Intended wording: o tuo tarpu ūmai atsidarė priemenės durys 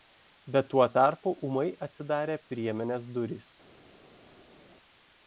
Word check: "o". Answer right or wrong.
wrong